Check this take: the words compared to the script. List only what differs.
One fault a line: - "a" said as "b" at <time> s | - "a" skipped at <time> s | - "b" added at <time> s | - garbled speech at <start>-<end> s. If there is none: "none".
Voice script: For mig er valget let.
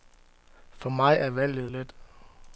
none